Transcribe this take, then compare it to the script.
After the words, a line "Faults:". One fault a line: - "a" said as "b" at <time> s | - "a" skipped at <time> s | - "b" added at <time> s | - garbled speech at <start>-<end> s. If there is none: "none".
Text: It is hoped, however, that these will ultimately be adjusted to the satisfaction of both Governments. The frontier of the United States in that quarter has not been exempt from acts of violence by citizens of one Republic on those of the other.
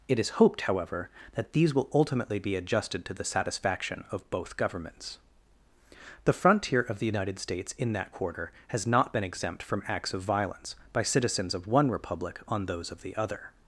It is hoped, however, that these will ultimately be adjusted to the satisfaction of both Governments. The frontier of the United States in that quarter has not been exempt from acts of violence by citizens of one Republic on those of the other.
Faults:
none